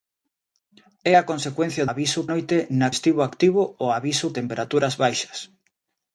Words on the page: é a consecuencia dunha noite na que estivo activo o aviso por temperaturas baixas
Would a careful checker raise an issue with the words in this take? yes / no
yes